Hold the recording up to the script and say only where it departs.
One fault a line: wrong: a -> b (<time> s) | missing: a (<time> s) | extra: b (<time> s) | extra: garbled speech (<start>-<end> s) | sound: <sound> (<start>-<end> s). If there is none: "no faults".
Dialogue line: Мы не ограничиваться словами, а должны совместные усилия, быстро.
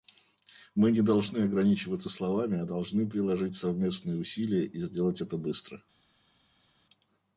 extra: должны (1.0 s)
extra: приложить (3.1 s)
extra: и сделать это (4.6 s)